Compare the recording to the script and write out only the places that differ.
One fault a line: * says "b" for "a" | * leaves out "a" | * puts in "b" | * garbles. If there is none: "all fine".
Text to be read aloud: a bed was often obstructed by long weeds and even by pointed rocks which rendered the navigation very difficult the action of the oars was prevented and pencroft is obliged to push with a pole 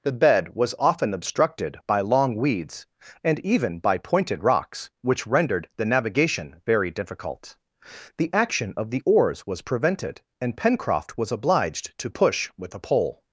* says "the" for "a"
* says "was" for "is"